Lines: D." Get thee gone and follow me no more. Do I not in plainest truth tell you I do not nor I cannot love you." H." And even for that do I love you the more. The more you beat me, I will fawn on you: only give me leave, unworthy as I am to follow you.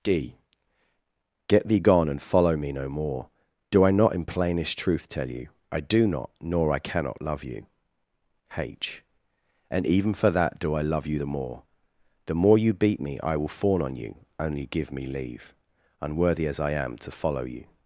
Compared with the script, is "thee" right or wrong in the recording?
right